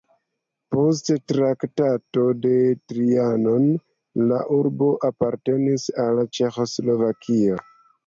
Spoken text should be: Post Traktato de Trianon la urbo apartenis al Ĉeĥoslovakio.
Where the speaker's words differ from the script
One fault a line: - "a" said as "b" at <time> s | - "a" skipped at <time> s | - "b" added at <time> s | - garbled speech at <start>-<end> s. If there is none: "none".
none